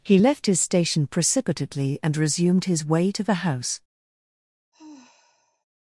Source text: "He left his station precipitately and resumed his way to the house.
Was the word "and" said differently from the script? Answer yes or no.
no